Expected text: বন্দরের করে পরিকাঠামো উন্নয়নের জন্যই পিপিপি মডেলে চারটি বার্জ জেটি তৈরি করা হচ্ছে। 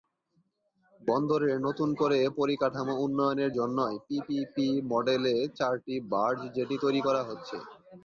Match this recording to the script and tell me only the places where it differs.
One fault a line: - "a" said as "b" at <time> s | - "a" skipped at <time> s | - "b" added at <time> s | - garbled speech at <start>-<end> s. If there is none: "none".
- "নতুন" added at 1.7 s